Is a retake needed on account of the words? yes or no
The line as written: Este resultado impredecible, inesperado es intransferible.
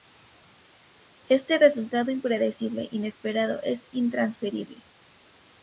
no